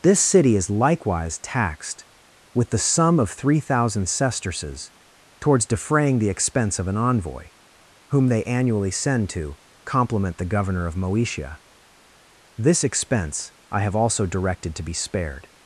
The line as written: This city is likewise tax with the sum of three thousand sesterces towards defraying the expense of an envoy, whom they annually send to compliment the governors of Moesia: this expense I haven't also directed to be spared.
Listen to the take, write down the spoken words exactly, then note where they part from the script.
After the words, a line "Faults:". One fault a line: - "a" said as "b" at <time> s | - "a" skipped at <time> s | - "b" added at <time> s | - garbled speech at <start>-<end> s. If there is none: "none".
This city is likewise taxed with the sum of three thousand sesterces towards defraying the expense of an envoy, whom they annually send to compliment the governor of Moesia: this expense I have also directed to be spared.
Faults:
- "tax" said as "taxed" at 1.4 s
- "governors" said as "governor" at 10.5 s
- "haven't" said as "have" at 13.8 s